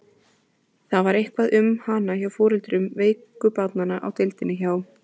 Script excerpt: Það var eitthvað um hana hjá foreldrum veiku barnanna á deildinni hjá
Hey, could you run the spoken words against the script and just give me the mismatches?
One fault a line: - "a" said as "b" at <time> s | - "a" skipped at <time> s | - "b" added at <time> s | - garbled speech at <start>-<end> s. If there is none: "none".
none